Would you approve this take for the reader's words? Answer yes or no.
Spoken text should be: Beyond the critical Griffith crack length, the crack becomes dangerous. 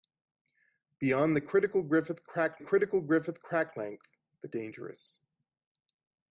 no